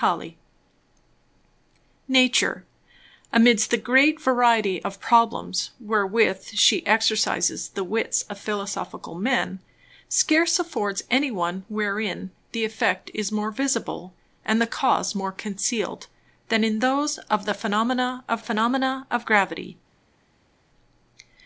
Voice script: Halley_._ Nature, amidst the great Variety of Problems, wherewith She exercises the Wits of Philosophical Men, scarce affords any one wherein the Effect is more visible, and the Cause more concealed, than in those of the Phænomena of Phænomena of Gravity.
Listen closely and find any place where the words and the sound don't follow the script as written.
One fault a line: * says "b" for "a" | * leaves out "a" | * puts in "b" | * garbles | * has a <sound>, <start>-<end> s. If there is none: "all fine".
all fine